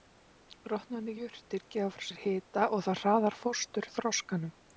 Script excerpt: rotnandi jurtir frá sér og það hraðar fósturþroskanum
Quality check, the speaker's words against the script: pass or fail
fail